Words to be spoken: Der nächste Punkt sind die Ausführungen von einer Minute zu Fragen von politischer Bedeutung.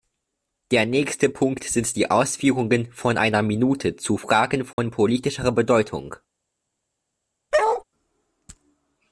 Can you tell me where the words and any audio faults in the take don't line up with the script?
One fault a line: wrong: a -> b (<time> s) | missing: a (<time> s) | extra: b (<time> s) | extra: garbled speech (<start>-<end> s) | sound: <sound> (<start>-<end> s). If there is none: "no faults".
sound: dropout (4.7-4.8 s)
sound: bark (7.5-7.8 s)